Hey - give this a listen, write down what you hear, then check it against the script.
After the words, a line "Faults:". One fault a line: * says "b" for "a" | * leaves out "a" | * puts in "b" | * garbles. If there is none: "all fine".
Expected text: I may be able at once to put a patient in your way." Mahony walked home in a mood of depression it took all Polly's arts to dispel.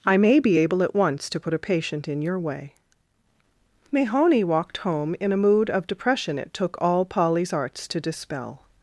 I may be able at once to put a patient in your way." Mahony walked home in a mood of depression it took all Polly's arts to dispel.
Faults:
all fine